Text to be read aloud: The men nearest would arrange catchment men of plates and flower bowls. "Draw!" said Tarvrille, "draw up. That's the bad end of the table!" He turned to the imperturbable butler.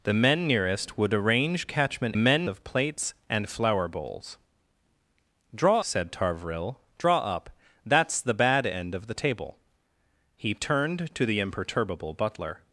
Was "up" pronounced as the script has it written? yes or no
yes